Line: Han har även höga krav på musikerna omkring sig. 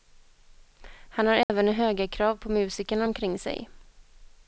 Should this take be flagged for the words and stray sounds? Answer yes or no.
yes